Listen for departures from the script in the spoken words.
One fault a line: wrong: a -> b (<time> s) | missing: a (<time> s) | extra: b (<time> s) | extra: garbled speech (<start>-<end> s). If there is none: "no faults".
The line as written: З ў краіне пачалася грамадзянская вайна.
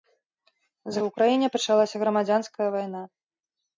no faults